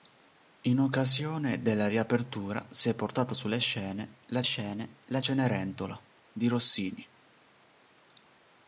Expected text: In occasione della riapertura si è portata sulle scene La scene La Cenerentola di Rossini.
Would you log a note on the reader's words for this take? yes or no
no